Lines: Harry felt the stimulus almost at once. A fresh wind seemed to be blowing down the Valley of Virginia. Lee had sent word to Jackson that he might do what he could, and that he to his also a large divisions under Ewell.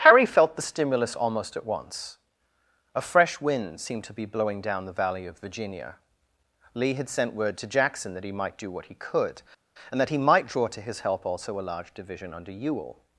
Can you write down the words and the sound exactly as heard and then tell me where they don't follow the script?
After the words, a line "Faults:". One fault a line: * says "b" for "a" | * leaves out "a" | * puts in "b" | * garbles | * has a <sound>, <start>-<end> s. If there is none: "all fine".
Harry felt the stimulus almost at once. A fresh wind seemed to be blowing down the Valley of Virginia. Lee had sent word to Jackson that he might do what he could, and that he might draw to his help also a large division under Ewell.
Faults:
* puts in "might draw"
* puts in "help"
* says "division" for "divisions"